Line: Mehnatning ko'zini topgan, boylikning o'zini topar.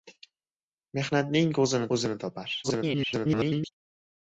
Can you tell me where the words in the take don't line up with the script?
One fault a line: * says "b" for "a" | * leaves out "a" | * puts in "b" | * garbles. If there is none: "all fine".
* leaves out "topgan boylikning"
* garbles